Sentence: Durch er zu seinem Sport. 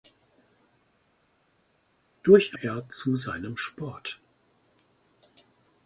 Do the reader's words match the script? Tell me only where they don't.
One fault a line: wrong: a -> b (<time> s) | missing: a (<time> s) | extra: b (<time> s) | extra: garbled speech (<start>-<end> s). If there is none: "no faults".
no faults